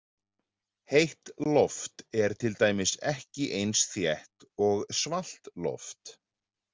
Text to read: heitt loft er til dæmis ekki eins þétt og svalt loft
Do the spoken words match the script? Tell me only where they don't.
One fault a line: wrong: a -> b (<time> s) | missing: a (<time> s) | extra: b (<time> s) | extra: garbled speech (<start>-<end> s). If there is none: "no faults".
no faults